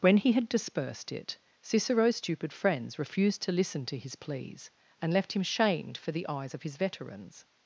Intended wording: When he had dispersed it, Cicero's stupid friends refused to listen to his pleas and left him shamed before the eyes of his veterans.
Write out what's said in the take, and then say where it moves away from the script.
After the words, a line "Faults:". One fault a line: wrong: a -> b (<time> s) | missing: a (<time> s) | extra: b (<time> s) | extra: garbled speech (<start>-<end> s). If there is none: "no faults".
When he had dispersed it, Cicero's stupid friends refused to listen to his pleas and left him shamed for the eyes of his veterans.
Faults:
wrong: before -> for (6.0 s)